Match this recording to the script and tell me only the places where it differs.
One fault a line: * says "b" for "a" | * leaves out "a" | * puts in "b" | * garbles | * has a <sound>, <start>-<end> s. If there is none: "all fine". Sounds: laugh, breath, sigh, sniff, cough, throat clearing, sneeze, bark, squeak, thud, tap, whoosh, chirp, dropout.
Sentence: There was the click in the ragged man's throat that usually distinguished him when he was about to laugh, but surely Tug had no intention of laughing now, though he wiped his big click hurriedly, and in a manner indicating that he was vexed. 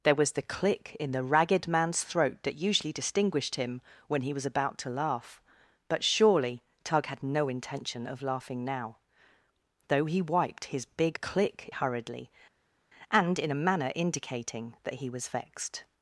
all fine